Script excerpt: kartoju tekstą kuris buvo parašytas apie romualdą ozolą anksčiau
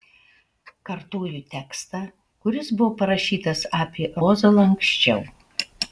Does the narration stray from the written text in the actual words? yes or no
yes